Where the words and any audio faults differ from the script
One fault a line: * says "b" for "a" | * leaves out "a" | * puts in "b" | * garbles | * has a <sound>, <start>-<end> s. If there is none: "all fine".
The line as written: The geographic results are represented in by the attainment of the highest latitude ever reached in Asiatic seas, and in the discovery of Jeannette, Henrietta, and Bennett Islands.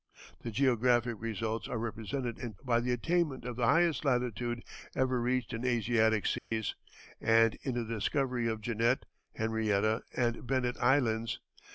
* has a dropout, 6.4-6.5 s